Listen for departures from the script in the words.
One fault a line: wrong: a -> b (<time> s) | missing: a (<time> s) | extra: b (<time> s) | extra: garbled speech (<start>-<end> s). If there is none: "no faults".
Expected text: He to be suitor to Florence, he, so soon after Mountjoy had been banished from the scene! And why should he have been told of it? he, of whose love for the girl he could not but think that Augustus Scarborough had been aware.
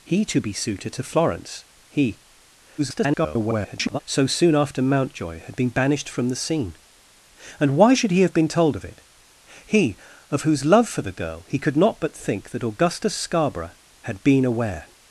extra: garbled speech (2.8-4.0 s)